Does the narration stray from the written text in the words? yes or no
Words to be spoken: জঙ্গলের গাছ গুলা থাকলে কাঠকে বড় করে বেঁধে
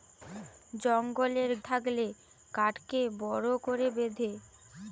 yes